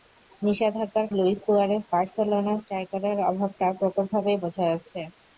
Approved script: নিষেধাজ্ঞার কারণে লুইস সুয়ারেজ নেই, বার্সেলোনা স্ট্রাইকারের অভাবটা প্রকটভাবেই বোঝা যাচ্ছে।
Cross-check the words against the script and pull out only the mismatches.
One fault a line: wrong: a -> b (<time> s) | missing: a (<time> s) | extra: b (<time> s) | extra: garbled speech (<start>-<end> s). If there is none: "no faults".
missing: কারণে (1.1 s)
missing: নেই (1.8 s)